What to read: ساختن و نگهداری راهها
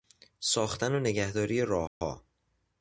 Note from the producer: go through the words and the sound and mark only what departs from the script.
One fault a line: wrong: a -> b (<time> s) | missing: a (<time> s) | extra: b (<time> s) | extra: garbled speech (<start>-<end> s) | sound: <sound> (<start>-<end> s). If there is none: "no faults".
sound: dropout (1.9-2.0 s)